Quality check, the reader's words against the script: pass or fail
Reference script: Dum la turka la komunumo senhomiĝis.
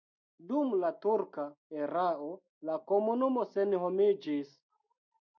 fail